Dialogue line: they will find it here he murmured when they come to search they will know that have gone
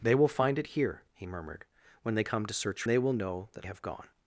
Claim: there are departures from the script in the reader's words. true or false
false